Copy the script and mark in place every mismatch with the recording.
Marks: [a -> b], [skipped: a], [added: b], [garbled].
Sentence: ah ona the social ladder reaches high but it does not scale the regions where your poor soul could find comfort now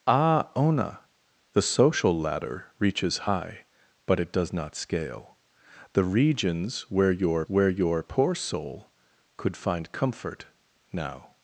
ah ona the social ladder reaches high but it does not scale the regions where your [added: where your] poor soul could find comfort now